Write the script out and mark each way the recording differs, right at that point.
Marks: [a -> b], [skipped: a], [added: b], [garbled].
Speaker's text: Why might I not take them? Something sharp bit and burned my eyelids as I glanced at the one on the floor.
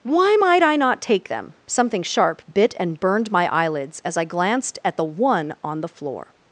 Why might I not take them? Something sharp bit and burned my eyelids as I glanced at the one on the floor.